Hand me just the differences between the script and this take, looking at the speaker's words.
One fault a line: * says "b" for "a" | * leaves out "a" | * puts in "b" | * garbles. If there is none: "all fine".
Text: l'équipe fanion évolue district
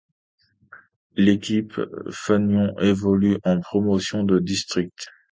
* puts in "en promotion de"